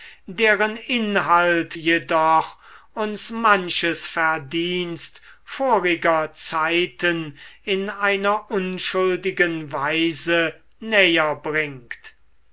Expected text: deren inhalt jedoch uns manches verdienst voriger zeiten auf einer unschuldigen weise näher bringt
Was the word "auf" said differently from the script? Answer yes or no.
yes